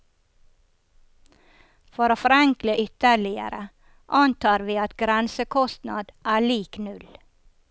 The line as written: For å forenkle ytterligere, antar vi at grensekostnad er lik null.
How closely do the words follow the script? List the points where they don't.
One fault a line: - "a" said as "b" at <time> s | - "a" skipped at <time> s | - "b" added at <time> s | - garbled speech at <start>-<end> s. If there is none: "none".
none